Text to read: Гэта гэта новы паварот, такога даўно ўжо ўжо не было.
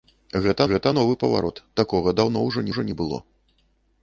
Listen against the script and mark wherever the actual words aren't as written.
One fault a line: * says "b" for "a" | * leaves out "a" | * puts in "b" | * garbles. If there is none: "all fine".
all fine